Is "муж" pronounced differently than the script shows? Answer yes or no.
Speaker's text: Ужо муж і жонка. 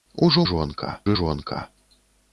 yes